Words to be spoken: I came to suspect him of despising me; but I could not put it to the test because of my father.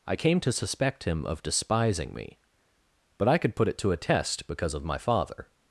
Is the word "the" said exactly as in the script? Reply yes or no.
no